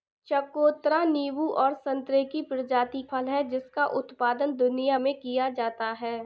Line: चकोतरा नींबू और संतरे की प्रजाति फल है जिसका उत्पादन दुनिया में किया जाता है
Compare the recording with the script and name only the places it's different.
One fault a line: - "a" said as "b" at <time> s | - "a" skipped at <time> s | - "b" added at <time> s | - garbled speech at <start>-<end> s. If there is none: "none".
none